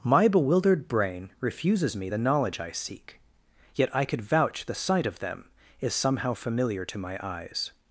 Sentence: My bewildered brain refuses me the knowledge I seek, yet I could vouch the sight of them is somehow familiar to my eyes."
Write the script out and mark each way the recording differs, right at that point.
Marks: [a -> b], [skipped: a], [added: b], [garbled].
My bewildered brain refuses me the knowledge I seek, yet I could vouch the sight of them is somehow familiar to my eyes."